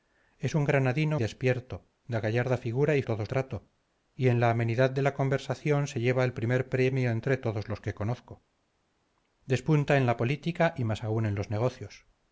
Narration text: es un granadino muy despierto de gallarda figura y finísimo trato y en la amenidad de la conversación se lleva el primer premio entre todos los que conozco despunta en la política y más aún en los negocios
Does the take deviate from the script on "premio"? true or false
false